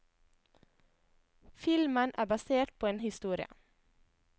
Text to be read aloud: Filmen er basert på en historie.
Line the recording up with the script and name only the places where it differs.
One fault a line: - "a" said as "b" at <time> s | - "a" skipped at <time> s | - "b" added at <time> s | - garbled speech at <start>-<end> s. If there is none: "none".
none